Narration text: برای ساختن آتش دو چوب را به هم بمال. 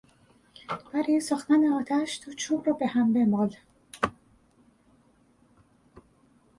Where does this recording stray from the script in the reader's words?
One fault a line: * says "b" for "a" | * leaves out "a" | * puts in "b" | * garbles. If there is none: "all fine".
all fine